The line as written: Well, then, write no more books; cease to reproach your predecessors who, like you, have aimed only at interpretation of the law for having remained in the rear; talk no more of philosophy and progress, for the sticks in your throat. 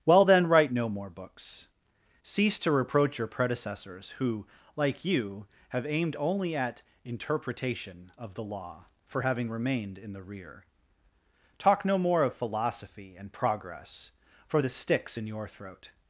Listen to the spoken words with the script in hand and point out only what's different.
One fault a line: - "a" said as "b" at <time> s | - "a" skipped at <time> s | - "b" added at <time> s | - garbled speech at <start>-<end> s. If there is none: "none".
none